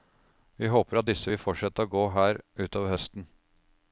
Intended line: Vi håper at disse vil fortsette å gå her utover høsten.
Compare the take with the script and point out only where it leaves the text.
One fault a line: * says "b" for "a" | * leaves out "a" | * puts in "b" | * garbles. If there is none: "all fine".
all fine